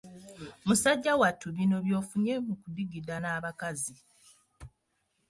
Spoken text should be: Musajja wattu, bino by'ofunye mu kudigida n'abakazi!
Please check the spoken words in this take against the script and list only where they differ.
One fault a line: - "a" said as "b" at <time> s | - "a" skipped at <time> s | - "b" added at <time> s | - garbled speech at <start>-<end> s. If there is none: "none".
none